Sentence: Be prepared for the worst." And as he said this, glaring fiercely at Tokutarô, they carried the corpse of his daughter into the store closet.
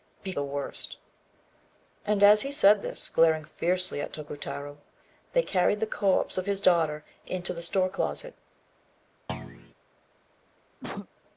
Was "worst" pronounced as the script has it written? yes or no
yes